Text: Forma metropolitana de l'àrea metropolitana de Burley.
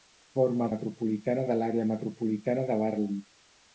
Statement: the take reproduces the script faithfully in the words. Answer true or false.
true